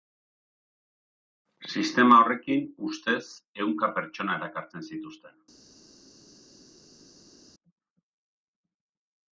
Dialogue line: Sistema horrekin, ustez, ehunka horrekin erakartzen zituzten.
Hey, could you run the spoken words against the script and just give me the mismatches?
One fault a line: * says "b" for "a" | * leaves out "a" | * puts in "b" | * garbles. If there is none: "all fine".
* says "pertsona" for "horrekin"